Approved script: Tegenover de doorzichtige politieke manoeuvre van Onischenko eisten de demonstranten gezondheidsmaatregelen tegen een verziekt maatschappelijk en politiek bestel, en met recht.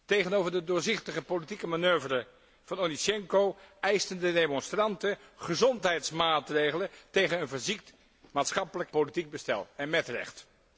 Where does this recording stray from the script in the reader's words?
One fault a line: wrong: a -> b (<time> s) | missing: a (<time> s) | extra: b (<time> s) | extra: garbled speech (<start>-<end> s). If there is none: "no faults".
missing: en (8.9 s)